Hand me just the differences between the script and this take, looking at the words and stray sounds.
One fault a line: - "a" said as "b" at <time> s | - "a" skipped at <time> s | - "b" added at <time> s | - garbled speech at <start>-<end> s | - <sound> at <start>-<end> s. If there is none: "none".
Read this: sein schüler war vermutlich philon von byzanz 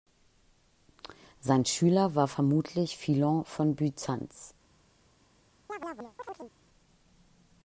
- chirp at 5.7-6.5 s